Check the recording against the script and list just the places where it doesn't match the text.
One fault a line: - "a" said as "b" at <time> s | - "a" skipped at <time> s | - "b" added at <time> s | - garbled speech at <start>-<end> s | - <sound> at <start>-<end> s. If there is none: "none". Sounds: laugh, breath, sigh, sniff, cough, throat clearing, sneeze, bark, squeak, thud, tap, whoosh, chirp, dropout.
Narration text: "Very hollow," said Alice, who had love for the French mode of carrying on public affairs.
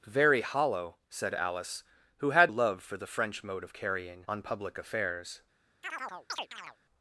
- chirp at 5.8-6.8 s